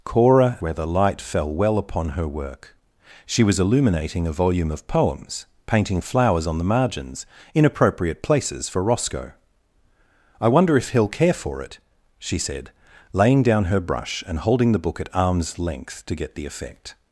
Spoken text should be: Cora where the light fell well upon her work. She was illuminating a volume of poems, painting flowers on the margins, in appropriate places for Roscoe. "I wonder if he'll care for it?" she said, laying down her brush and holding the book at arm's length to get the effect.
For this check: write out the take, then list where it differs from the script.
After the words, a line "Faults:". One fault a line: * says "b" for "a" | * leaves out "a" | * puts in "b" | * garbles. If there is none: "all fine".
Cora where the light fell well upon her work. She was illuminating a volume of poems, painting flowers on the margins, in appropriate places for Roscoe. "I wonder if he'll care for it?" she said, laying down her brush and holding the book at arm's length to get the effect.
Faults:
all fine